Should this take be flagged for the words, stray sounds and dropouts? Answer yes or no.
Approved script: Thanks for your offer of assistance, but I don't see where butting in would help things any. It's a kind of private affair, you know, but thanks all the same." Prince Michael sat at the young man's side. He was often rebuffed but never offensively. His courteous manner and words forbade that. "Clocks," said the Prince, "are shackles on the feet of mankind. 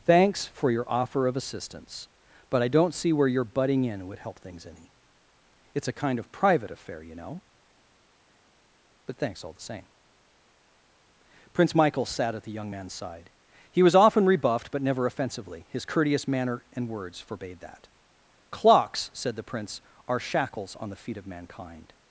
yes